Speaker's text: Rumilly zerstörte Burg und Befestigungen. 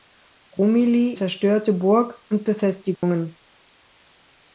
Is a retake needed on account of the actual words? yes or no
no